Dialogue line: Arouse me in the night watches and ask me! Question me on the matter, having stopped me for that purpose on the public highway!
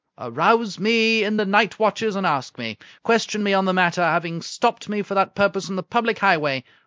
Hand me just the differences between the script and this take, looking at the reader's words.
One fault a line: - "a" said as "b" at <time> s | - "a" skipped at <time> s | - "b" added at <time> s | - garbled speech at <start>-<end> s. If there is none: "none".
none